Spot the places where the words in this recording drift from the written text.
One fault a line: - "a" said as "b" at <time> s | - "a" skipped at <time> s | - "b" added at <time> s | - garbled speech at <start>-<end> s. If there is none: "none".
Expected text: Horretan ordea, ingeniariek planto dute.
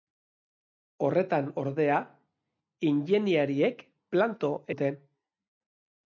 none